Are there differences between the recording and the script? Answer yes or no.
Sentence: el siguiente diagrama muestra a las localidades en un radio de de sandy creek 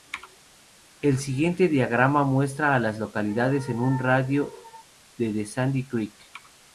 no